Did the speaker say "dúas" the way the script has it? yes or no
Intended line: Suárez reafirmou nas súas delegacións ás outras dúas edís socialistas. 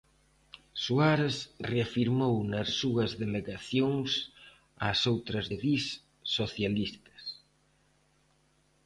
no